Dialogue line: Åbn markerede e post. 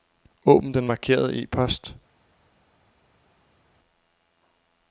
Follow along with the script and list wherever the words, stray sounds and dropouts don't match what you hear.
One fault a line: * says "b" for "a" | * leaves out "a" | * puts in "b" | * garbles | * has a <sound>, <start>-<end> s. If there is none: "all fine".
* puts in "den"